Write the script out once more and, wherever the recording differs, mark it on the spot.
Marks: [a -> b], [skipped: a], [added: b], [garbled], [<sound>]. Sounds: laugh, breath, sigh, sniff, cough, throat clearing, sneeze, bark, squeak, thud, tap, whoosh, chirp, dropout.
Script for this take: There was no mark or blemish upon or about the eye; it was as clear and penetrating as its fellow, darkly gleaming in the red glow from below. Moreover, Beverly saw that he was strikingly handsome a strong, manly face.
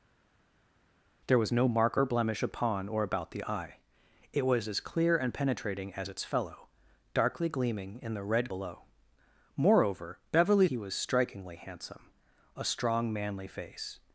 There was no mark or blemish upon or about the eye; it was as clear and penetrating as its fellow, darkly gleaming in the red [skipped: glow from] below. Moreover, Beverly [skipped: saw that] he was strikingly handsome a strong, manly face.